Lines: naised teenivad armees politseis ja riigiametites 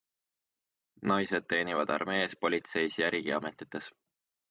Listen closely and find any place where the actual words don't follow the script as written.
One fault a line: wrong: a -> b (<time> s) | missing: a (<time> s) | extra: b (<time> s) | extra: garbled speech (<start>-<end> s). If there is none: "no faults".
no faults